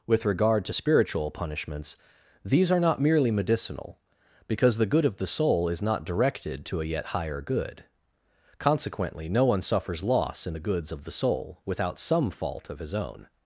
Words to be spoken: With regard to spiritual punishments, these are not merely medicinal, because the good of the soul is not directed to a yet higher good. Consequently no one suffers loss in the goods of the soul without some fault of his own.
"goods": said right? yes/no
yes